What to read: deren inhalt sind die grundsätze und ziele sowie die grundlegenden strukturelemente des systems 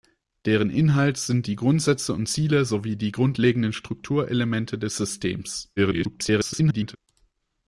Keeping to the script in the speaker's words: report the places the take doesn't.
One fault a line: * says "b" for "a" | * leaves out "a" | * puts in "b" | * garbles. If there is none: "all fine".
* garbles